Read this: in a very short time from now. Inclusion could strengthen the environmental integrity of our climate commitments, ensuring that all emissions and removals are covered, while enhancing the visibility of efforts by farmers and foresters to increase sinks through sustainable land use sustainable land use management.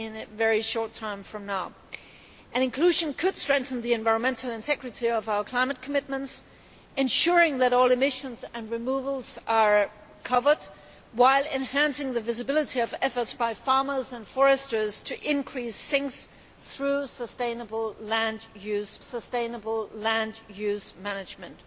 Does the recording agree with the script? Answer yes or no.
yes